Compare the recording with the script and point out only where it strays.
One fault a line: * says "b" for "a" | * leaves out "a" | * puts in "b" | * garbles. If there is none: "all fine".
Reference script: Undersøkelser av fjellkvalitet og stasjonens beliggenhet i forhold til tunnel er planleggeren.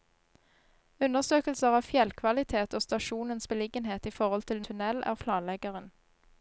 all fine